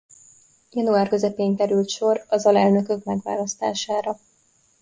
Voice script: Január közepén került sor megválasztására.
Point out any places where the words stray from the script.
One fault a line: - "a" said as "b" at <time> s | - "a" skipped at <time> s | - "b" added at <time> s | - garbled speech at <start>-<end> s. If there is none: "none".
- "az alelnökök" added at 2.3 s